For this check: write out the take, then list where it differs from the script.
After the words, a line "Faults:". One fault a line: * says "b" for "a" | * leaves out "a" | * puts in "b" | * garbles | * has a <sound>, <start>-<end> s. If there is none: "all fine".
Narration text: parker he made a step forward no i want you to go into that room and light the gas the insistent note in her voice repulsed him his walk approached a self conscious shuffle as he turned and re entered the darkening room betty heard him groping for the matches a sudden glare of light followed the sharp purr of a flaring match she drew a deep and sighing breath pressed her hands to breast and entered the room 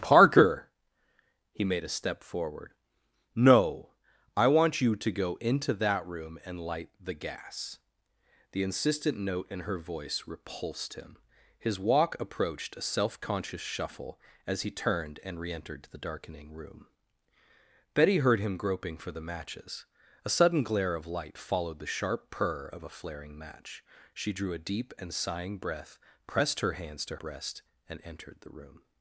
parker he made a step forward no i want you to go into that room and light the gas the insistent note in her voice repulsed him his walk approached a self conscious shuffle as he turned and re entered the darkening room betty heard him groping for the matches a sudden glare of light followed the sharp purr of a flaring match she drew a deep and sighing breath pressed her hands to breast and entered the room
Faults:
all fine